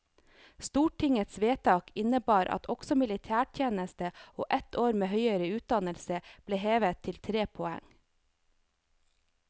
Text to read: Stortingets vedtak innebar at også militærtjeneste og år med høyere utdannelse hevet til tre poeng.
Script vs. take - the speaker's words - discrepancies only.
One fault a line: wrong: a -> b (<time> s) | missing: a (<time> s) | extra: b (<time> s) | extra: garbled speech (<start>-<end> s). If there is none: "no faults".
extra: ett (4.6 s)
extra: ble (6.5 s)